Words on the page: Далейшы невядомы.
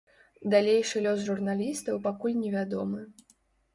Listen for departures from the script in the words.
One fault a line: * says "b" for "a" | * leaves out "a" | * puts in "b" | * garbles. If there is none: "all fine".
* puts in "лёс журналістаў пакуль"